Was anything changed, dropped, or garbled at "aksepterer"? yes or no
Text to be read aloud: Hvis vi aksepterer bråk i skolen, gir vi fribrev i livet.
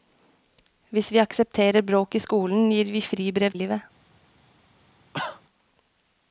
no